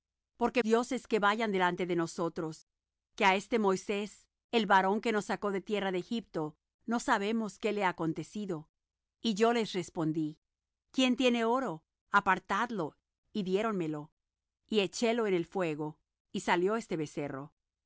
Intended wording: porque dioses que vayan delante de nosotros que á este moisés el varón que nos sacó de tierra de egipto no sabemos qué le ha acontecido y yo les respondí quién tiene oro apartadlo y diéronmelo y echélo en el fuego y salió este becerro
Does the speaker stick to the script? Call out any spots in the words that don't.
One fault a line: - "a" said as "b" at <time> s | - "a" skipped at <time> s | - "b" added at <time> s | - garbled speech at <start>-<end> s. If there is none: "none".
none